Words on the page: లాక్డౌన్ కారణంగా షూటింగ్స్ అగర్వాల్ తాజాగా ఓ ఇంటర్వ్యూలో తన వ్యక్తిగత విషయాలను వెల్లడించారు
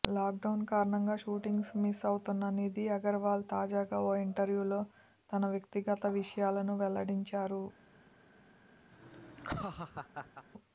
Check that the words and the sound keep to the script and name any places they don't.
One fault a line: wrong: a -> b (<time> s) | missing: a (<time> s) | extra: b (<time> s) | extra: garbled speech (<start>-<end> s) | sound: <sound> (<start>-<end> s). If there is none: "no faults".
extra: మిస్ అవుతున్న నిధి (1.8 s)
sound: laugh (8.9-10.5 s)